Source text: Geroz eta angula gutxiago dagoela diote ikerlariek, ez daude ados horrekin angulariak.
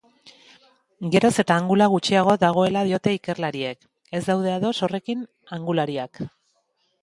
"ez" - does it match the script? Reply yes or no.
yes